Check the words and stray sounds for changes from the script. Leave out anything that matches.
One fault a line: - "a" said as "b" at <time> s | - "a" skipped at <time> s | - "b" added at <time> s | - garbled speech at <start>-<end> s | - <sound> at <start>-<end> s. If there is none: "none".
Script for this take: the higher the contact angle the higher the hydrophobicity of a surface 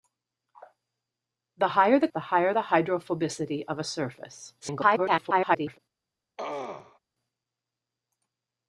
- "contact angle" skipped at 2.1 s
- garbled speech at 4.6-5.8 s
- throat clearing at 6.4-7.0 s